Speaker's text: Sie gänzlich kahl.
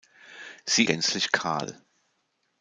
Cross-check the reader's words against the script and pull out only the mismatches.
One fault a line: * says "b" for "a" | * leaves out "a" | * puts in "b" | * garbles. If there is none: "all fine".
all fine